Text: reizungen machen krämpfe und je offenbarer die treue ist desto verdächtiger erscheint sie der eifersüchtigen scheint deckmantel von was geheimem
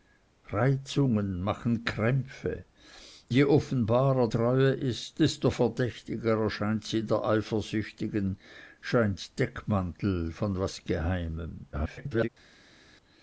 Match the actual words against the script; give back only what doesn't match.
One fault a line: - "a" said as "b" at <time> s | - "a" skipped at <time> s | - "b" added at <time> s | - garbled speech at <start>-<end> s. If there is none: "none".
- "und" skipped at 2.6 s
- "die" skipped at 4.3 s
- garbled speech at 11.7-12.3 s